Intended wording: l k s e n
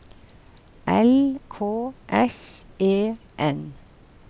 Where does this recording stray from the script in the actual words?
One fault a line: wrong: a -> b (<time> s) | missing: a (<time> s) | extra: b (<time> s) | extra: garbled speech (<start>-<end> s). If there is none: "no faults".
no faults